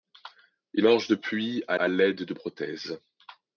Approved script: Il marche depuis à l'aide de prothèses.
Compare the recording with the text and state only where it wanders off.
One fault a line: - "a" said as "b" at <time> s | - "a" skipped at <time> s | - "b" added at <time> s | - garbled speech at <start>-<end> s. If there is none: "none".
- "à" added at 1.8 s